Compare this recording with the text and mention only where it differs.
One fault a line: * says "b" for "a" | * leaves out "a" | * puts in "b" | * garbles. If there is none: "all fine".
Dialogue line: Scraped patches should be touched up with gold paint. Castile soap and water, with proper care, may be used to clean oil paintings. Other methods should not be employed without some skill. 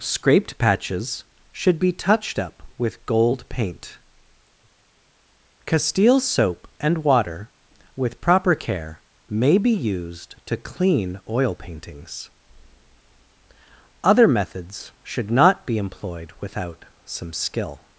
all fine